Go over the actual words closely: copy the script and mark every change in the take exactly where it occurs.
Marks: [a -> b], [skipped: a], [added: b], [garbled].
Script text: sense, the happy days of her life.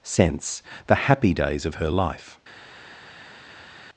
sense, the happy days of her life.